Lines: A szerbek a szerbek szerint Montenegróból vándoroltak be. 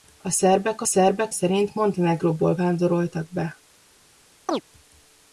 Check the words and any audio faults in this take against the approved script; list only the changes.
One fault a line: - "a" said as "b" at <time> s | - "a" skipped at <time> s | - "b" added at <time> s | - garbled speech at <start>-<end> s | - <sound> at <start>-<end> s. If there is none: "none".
- chirp at 4.5-4.6 s